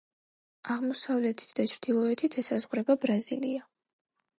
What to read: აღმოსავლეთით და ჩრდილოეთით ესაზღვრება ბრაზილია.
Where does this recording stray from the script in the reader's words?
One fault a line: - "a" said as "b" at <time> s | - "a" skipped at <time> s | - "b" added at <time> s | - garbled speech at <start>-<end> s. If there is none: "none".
none